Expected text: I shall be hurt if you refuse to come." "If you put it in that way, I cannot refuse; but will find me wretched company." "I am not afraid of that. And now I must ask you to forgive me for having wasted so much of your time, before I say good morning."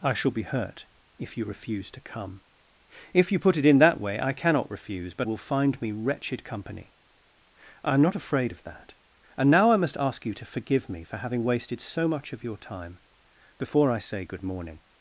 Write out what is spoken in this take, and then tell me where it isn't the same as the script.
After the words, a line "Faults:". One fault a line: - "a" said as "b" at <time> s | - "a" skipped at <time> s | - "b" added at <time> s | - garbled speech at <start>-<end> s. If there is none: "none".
I shall be hurt if you refuse to come." "If you put it in that way, I cannot refuse; but will find me wretched company." "I am not afraid of that. And now I must ask you to forgive me for having wasted so much of your time, before I say good morning."
Faults:
none